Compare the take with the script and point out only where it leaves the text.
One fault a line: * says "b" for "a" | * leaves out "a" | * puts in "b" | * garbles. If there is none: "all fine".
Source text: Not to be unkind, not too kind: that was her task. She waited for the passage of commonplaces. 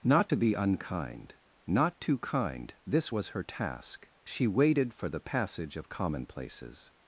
* says "this" for "that"